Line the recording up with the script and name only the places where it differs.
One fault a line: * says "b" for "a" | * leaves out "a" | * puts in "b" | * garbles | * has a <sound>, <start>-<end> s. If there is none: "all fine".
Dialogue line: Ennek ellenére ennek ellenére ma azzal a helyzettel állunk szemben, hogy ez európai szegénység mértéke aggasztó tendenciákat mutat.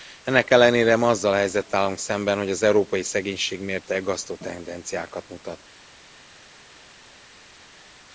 * leaves out "ennek ellenére"
* says "az" for "ez"